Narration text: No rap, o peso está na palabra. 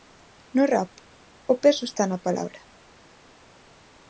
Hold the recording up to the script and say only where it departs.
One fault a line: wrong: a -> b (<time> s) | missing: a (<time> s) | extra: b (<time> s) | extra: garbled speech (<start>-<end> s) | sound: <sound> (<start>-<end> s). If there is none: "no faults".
no faults